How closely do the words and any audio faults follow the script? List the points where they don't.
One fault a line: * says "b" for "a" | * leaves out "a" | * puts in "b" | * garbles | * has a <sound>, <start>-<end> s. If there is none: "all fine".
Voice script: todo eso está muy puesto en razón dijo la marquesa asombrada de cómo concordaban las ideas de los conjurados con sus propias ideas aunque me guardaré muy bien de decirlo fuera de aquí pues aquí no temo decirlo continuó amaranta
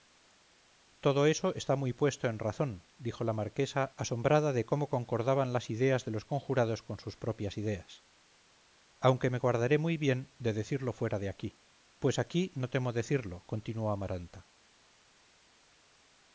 all fine